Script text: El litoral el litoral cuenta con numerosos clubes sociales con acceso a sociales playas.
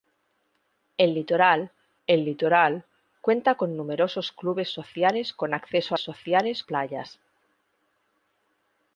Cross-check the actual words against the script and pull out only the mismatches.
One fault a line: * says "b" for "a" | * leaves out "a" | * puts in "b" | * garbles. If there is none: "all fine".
all fine